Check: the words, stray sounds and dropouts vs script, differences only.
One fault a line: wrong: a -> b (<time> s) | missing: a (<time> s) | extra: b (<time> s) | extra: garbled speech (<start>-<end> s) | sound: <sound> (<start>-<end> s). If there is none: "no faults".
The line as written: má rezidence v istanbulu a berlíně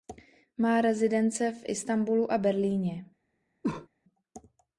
sound: cough (3.6-3.9 s)